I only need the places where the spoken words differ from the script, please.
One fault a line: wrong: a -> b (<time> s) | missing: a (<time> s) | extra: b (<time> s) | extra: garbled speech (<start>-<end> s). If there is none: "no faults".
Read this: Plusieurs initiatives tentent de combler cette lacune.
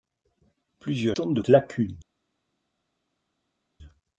missing: initiatives (1.1 s)
missing: combler cette (1.4 s)